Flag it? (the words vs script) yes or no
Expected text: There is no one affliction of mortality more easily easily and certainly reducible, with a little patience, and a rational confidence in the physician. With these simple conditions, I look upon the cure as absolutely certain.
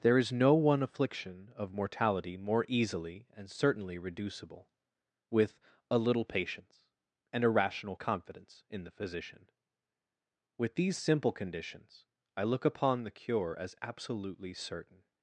yes